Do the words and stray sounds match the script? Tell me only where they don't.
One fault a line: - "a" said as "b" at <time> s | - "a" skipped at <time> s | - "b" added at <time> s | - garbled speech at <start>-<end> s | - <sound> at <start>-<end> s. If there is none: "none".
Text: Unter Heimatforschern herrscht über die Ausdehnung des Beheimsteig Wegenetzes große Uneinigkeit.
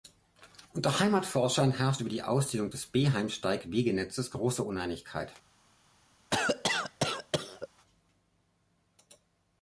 - cough at 6.3-7.7 s